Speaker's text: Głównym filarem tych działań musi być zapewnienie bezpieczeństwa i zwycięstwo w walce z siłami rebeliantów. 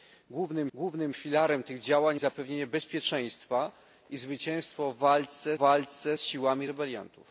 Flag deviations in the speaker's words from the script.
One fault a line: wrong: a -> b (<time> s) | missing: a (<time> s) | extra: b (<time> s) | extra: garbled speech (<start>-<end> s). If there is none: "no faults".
extra: głównym (0.7 s)
missing: musi być (2.2 s)
extra: walce (5.6 s)